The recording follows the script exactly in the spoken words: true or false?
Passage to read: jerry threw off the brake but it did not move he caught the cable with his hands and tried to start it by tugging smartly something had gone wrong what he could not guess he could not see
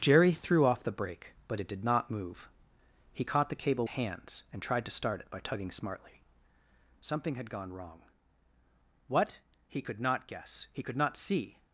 false